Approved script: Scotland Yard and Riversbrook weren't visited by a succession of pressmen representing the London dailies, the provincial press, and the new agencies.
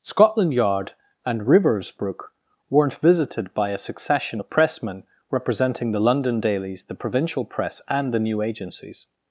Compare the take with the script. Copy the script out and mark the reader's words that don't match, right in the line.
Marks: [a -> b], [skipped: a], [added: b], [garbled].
Scotland Yard and Riversbrook weren't visited by a succession of pressmen representing the London dailies, the provincial press, and the new agencies.